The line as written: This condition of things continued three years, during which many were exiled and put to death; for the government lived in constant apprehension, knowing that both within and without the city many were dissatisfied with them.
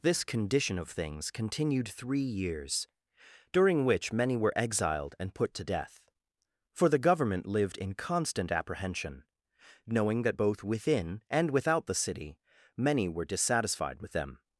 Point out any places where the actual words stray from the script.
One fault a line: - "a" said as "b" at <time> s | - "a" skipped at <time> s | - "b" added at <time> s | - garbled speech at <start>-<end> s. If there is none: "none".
none